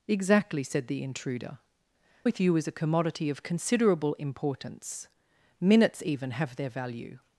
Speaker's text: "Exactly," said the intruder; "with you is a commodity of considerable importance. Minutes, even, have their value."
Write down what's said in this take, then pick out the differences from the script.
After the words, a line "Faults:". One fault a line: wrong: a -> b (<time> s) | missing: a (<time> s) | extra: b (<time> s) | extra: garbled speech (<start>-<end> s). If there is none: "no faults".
"Exactly," said the intruder; "with you is a commodity of considerable importance. Minutes, even, have their value."
Faults:
no faults